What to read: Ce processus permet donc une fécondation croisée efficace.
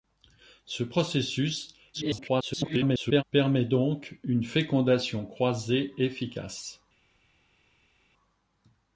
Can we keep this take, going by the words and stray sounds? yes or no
no